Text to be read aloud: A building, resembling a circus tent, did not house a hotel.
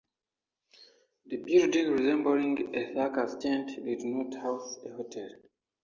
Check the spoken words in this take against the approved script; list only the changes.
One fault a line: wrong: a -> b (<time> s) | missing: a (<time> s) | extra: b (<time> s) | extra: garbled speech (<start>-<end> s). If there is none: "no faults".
wrong: A -> The (1.3 s)